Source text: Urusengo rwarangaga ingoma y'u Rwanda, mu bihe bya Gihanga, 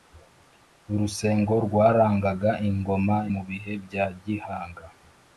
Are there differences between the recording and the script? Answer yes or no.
yes